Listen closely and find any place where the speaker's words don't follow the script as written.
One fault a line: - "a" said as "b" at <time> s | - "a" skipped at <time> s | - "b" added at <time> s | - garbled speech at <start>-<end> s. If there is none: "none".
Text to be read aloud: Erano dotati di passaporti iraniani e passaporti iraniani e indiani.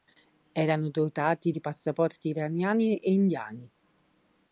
- "passaporti iraniani e" skipped at 3.1 s